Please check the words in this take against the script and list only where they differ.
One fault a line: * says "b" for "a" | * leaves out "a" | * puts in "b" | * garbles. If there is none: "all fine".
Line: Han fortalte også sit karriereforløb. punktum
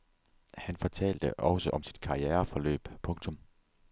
* puts in "om"